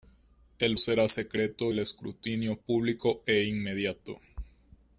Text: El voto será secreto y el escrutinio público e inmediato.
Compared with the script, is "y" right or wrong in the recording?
wrong